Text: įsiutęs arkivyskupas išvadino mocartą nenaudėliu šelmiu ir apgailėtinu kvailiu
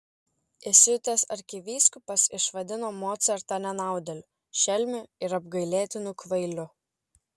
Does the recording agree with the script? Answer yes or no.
yes